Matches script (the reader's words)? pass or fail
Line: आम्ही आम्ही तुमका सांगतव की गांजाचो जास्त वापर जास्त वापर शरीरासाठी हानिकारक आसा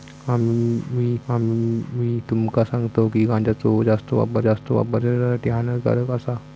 pass